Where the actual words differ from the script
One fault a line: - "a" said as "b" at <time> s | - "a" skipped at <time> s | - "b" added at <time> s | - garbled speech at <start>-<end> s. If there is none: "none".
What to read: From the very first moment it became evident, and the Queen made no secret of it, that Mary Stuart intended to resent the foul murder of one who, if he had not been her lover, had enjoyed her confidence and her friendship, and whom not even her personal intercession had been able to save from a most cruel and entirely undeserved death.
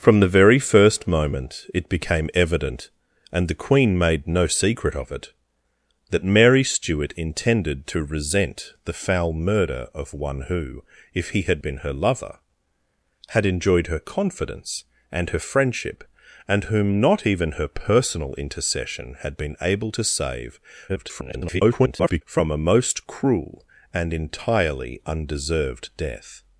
- "not" skipped at 11.6 s
- garbled speech at 20.9-22.2 s